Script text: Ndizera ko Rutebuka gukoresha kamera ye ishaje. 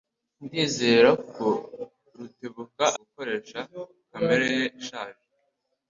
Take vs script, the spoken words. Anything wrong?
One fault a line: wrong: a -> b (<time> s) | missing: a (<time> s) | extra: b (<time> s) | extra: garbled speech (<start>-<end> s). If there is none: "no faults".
no faults